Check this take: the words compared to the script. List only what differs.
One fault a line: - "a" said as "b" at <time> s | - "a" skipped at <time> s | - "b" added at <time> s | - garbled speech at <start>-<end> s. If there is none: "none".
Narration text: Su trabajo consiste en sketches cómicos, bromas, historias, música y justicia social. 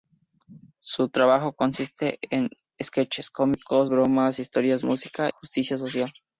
- "y" skipped at 5.3 s